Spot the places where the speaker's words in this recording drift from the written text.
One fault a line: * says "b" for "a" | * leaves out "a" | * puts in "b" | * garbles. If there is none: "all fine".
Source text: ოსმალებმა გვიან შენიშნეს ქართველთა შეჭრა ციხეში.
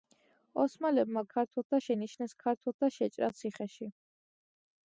* says "ქართველთა" for "გვიან"